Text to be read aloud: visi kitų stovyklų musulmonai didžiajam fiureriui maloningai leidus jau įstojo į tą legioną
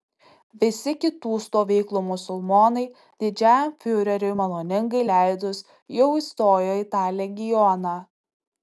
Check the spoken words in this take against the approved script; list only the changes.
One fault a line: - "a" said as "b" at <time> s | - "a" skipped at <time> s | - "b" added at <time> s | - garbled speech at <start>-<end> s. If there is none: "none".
none